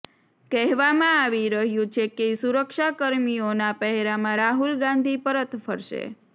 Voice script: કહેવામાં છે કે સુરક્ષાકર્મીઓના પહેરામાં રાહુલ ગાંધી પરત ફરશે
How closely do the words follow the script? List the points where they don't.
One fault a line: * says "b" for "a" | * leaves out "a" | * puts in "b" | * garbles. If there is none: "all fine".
* puts in "આવી રહ્યું"